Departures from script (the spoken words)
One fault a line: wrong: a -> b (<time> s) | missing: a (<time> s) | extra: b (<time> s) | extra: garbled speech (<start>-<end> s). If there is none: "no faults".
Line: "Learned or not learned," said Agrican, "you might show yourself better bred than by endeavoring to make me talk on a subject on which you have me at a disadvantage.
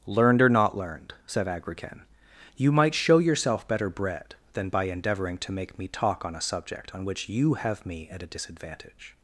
no faults